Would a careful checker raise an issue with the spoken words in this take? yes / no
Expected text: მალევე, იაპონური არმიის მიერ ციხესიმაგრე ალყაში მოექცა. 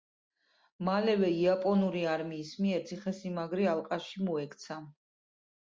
no